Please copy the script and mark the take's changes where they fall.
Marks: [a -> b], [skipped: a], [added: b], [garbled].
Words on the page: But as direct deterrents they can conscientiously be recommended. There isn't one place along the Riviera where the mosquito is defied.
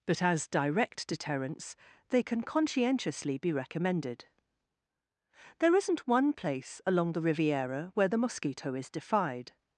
But as direct deterrents they can conscientiously be recommended. There isn't one place along the Riviera where the mosquito is defied.